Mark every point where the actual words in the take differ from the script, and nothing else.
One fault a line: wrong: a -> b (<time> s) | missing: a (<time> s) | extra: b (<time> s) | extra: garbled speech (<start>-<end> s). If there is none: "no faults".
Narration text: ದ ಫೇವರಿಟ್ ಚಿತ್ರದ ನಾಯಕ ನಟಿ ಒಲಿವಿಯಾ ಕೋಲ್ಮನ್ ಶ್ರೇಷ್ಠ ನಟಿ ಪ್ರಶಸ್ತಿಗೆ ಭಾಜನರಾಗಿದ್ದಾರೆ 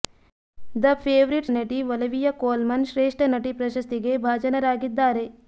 missing: ಚಿತ್ರದ ನಾಯಕ (1.5 s)